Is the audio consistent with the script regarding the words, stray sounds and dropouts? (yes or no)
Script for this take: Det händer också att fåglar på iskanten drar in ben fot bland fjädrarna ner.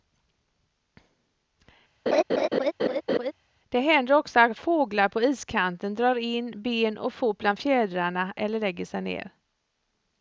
no